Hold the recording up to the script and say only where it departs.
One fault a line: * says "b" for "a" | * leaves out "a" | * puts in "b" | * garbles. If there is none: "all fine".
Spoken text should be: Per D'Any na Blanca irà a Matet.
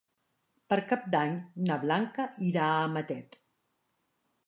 * puts in "Cap"